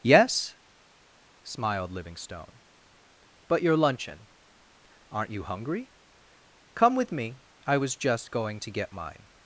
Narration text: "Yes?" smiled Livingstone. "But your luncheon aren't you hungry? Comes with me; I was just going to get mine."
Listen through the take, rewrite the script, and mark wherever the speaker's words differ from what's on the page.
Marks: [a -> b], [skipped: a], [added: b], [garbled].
"Yes?" smiled Livingstone. "But your luncheon aren't you hungry? [Comes -> Come] with me; I was just going to get mine."